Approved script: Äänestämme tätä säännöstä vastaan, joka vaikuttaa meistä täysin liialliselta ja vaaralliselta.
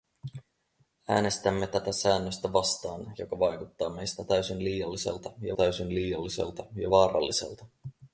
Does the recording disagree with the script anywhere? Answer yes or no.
yes